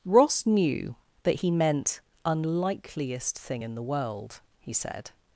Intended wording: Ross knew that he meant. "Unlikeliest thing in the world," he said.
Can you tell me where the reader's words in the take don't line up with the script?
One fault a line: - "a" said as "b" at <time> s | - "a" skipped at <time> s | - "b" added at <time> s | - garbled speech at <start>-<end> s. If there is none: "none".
none